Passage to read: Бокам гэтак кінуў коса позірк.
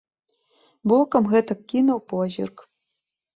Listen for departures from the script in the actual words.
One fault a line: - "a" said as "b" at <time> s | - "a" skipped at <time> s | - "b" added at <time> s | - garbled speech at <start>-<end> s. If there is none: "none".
- "коса" skipped at 2.0 s